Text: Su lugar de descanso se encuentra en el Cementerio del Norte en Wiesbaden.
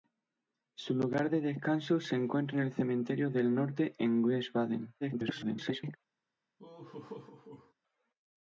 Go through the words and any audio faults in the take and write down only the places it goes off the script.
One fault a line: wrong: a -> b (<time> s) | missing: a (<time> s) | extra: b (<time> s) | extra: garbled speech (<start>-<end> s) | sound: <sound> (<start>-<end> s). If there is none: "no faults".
extra: garbled speech (5.0-6.0 s)
sound: laugh (6.6-7.7 s)